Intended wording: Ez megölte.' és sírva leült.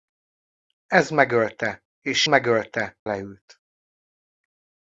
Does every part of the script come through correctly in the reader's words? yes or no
no